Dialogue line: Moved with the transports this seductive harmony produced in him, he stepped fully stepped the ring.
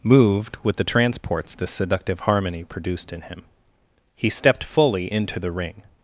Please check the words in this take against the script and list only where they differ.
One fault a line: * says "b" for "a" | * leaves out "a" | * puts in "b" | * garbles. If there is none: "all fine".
* says "into" for "stepped"